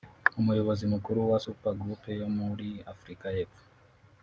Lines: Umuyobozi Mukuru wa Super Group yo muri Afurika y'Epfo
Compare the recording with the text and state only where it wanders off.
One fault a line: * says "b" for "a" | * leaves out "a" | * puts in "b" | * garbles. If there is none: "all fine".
all fine